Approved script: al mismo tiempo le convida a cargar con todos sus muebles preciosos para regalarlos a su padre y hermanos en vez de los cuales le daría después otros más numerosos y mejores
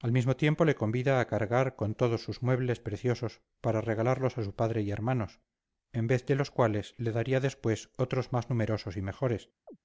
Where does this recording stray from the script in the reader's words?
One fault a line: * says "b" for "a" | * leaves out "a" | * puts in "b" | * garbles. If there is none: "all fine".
all fine